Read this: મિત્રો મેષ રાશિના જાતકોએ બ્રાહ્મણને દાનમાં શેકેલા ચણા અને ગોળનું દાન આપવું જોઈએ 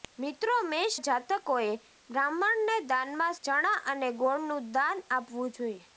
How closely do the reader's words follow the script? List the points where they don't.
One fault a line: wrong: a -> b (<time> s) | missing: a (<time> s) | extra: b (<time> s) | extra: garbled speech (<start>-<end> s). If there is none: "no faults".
missing: રાશિના (0.9 s)
missing: શેકેલા (3.4 s)